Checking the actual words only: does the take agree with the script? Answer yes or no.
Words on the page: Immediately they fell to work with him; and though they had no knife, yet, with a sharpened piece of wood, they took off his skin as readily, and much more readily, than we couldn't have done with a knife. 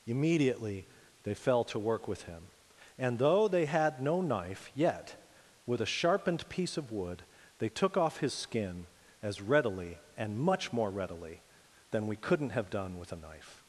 yes